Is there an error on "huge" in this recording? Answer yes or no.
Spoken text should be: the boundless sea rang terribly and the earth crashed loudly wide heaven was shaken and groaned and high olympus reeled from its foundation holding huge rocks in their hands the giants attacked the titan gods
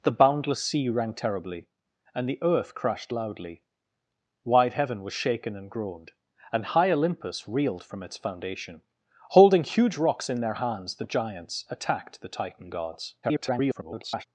no